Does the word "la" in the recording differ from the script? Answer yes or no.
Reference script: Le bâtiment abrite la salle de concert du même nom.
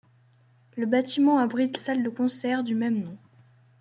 yes